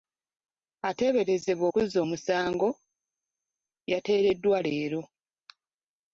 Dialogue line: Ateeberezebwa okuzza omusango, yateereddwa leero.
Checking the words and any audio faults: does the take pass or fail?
pass